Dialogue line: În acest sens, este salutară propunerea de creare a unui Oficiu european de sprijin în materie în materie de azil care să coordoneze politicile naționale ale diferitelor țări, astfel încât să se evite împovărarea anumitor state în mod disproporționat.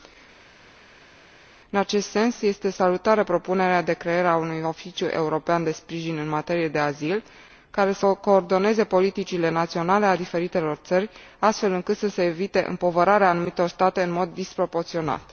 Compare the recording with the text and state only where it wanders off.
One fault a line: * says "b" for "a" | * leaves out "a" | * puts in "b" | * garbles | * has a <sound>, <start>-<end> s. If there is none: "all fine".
* leaves out "în materie"